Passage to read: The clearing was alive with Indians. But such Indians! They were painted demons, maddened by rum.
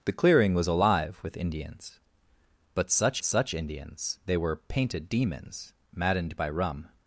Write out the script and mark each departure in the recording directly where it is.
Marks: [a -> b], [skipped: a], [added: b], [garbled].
The clearing was alive with Indians. But such [added: such] Indians! They were painted demons, maddened by rum.